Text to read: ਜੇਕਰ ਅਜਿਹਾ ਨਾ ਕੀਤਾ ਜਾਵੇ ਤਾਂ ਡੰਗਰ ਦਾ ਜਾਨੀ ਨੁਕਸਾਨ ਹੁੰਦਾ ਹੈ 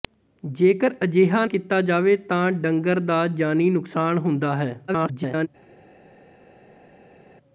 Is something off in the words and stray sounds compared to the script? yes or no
yes